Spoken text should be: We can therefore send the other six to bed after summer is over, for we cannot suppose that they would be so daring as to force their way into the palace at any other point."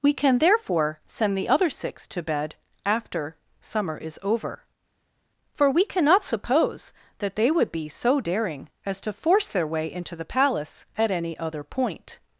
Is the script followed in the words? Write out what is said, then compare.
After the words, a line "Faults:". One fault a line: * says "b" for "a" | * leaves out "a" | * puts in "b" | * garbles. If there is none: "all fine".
We can therefore send the other six to bed after summer is over, for we cannot suppose that they would be so daring as to force their way into the palace at any other point."
Faults:
all fine